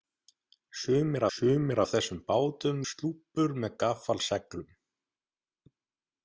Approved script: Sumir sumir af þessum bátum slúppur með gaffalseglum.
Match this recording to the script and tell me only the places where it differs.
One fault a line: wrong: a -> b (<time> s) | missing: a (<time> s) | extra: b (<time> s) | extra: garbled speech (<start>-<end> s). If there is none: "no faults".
no faults